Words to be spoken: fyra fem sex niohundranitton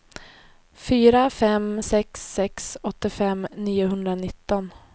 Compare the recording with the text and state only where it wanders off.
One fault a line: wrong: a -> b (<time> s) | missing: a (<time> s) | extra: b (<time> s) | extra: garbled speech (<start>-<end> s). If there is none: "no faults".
extra: sex åttiofem (2.3 s)